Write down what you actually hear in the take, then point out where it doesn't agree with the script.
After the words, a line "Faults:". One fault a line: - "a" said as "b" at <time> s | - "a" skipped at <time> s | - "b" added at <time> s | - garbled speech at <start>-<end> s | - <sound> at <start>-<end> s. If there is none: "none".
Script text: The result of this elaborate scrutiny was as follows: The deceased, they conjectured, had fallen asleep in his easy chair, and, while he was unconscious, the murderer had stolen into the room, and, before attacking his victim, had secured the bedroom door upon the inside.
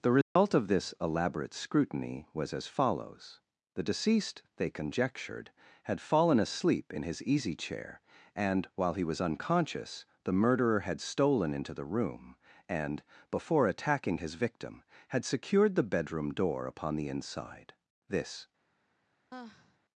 The result of this elaborate scrutiny was as follows: The deceased, they conjectured, had fallen asleep in his easy chair, and, while he was unconscious, the murderer had stolen into the room, and, before attacking his victim, had secured the bedroom door upon the inside. This
Faults:
- dropout at 0.2-0.4 s
- "This" added at 18.1 s
- sigh at 19.3-19.8 s